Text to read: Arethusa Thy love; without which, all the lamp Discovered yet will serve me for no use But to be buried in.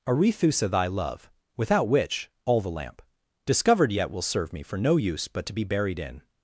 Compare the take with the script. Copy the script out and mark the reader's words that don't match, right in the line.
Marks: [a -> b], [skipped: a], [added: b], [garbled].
Arethusa Thy love; without which, all the lamp Discovered yet will serve me for no use But to be buried in.